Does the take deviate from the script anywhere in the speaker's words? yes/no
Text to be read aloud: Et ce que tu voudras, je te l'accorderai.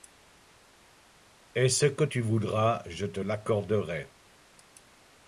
no